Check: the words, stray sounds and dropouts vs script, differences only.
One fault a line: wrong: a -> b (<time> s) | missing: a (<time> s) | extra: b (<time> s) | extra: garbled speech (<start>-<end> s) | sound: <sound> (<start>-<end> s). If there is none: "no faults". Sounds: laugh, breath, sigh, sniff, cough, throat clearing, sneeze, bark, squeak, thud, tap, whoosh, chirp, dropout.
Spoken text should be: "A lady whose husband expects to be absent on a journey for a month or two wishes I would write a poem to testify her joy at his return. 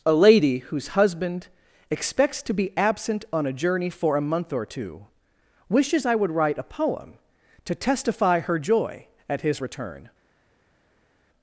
no faults